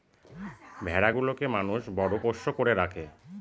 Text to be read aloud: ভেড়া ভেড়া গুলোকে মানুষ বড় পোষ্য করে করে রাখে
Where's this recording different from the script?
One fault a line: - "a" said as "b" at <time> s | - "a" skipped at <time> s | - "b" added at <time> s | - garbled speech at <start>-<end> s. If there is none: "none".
- "ভেড়া" skipped at 1.1 s
- "করে" skipped at 2.7 s